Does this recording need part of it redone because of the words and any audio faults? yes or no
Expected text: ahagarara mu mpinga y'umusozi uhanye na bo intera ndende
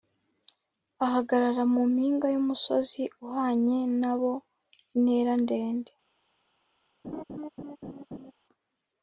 yes